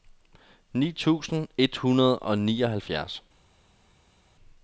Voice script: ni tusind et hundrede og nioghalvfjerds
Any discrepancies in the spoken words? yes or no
no